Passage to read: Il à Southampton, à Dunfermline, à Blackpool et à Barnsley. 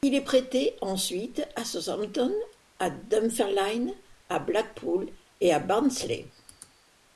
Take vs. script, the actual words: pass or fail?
fail